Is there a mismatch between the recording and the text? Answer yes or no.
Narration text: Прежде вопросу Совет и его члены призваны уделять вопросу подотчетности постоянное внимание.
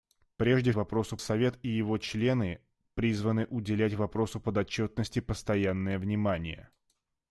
no